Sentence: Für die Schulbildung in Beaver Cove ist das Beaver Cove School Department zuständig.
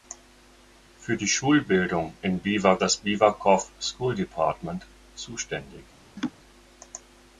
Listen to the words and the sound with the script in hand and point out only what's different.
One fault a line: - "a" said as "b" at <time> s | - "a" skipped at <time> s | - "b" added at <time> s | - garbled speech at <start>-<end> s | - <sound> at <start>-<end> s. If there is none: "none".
- "Cove ist" skipped at 2.8 s
- laugh at 6.2-6.3 s